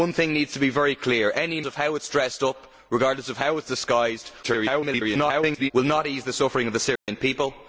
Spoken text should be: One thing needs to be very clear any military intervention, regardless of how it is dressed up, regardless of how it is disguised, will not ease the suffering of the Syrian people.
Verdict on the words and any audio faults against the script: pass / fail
fail